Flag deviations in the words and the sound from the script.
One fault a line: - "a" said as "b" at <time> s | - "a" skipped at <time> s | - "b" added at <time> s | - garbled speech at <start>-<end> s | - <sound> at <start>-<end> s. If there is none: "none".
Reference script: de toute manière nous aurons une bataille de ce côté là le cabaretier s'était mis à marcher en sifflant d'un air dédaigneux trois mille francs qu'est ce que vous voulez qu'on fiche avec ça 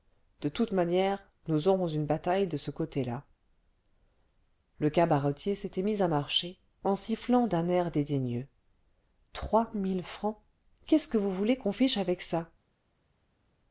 none